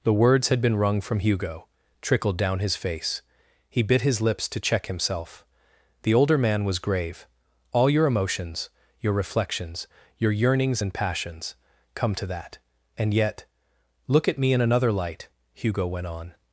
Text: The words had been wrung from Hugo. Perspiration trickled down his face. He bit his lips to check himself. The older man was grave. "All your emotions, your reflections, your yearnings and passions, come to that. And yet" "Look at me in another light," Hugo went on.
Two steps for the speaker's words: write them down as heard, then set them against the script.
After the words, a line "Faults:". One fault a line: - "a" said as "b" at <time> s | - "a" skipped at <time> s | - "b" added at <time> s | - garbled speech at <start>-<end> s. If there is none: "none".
The words had been wrung from Hugo. trickled down his face. He bit his lips to check himself. The older man was grave. "All your emotions, your reflections, your yearnings and passions, come to that. And yet" "Look at me in another light," Hugo went on.
Faults:
- "Perspiration" skipped at 1.7 s